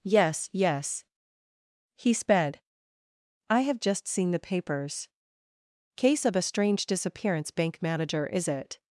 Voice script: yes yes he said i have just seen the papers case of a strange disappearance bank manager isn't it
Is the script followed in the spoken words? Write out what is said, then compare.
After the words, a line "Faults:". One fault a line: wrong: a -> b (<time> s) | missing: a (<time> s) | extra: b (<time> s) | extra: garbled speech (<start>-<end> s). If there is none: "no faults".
yes yes he sped i have just seen the papers case of a strange disappearance bank manager is it
Faults:
wrong: said -> sped (2.1 s)
wrong: isn't -> is (8.3 s)